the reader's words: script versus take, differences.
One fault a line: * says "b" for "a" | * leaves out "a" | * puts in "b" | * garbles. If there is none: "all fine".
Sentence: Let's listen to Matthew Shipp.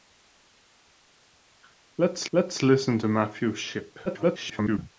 * puts in "let's"
* garbles